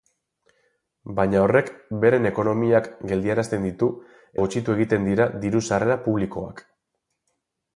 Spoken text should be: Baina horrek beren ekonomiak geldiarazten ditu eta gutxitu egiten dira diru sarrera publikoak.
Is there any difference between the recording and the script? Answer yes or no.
yes